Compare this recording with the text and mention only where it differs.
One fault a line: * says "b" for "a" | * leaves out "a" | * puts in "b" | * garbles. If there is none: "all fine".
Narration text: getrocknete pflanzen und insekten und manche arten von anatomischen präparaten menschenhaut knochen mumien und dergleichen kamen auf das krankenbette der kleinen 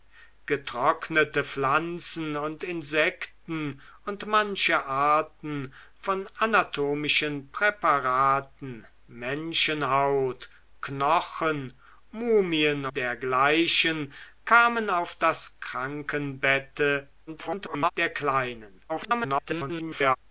* leaves out "und"
* garbles
* garbles